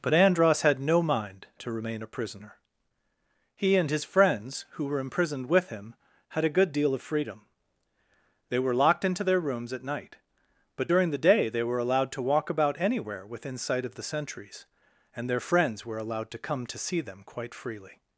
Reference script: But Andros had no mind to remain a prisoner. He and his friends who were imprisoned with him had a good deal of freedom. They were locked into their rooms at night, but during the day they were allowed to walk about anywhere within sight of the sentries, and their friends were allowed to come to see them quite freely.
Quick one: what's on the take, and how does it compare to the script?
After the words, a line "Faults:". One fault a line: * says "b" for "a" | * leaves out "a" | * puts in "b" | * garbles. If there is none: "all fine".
But Andros had no mind to remain a prisoner. He and his friends who were imprisoned with him had a good deal of freedom. They were locked into their rooms at night, but during the day they were allowed to walk about anywhere within sight of the sentries, and their friends were allowed to come to see them quite freely.
Faults:
all fine